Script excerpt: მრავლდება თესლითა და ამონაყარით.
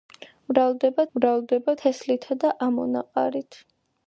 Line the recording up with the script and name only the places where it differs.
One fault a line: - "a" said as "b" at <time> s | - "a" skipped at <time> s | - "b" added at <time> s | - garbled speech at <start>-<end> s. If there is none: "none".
- "მრავლდება" added at 1.2 s